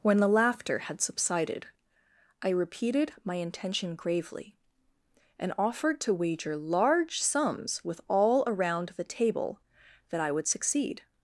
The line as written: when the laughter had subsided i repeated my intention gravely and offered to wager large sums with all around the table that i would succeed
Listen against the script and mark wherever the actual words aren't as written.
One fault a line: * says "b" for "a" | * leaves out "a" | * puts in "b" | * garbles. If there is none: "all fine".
all fine